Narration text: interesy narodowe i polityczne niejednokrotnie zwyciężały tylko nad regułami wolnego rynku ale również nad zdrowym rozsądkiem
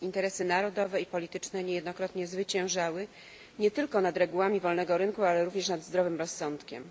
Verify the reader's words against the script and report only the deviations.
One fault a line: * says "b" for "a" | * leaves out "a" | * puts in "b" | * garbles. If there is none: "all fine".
* puts in "nie"